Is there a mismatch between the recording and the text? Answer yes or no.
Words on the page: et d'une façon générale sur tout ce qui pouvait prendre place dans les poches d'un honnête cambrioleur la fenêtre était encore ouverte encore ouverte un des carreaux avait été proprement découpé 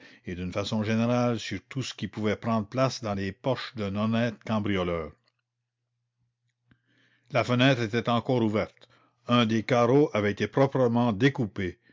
yes